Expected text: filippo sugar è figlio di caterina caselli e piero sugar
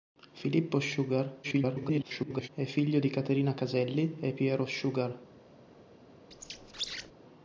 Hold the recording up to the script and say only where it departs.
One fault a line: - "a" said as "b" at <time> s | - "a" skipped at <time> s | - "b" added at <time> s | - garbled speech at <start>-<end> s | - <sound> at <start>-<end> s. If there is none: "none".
- garbled speech at 1.4-2.5 s
- squeak at 6.3-7.1 s